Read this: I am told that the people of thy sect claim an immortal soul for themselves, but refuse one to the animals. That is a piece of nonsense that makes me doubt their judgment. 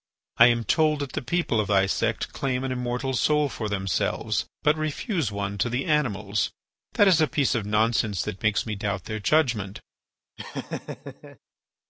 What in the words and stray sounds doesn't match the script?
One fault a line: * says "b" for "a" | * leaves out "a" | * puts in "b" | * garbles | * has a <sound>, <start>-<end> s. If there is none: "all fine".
* has a laugh, 10.4-11.4 s